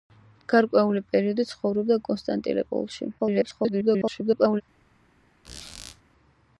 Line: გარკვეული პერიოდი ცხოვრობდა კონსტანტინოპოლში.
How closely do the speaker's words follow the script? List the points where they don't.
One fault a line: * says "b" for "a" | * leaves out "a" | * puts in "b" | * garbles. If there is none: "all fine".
* garbles